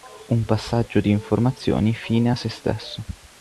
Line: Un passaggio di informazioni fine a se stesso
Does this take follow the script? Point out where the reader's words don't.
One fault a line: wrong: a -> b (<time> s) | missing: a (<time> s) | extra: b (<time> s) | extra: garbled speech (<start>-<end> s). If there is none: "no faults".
no faults